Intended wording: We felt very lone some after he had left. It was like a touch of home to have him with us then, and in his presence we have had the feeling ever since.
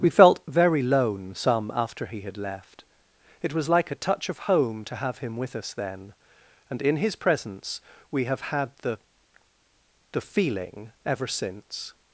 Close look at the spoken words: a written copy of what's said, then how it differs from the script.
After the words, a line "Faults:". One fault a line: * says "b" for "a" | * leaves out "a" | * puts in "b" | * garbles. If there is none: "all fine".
We felt very lone some after he had left. It was like a touch of home to have him with us then, and in his presence we have had the the feeling ever since.
Faults:
* puts in "the"